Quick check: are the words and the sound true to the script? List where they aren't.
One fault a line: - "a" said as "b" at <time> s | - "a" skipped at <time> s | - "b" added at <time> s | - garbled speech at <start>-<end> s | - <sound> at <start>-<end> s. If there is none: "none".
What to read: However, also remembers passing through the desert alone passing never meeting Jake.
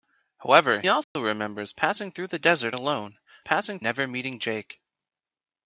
- dropout at 1.0-1.2 s